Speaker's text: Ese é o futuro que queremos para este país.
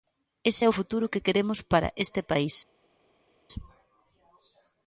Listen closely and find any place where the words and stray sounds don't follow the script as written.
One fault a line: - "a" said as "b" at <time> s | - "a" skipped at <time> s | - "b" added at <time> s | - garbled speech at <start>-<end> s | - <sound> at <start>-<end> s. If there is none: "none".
none